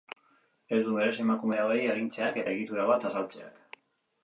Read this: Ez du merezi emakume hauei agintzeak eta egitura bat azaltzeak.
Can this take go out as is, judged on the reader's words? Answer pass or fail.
fail